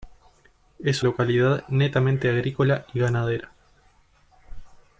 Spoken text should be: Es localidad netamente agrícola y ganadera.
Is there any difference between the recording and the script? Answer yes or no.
no